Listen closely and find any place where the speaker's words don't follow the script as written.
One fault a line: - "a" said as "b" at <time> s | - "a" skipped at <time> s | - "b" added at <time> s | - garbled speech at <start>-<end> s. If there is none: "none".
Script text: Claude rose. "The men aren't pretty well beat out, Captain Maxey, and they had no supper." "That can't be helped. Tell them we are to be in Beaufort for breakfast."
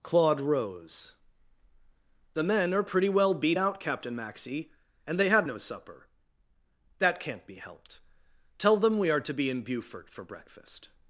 - "aren't" said as "are" at 2.7 s